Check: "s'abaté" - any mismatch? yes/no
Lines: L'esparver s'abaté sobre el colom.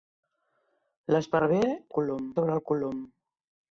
yes